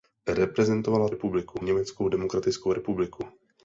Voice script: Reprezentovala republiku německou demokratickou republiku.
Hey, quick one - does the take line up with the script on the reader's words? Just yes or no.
yes